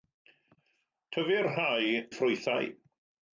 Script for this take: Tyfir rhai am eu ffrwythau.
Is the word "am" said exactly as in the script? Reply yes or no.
no